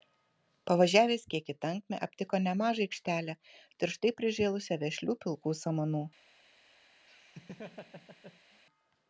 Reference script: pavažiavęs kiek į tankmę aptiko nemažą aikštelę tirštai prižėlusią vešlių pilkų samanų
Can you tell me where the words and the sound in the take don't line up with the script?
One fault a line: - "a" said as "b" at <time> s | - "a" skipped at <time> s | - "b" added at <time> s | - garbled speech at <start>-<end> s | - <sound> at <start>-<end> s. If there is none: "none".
- laugh at 7.1-8.6 s